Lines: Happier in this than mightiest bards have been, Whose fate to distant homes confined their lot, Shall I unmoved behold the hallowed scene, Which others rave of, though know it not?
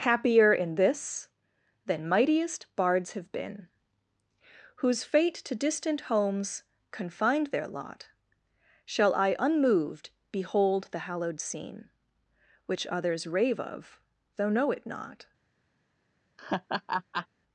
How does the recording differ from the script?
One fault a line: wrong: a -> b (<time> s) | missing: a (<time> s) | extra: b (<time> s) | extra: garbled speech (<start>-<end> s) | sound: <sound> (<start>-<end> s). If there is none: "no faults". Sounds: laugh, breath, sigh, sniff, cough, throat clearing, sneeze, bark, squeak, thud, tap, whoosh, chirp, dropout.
sound: laugh (16.4-17.3 s)